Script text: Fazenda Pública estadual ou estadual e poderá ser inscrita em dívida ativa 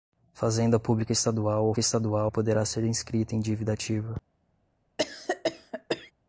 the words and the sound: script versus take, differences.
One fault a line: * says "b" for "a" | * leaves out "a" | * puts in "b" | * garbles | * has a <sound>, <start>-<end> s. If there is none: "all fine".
* has a cough, 5.0-6.1 s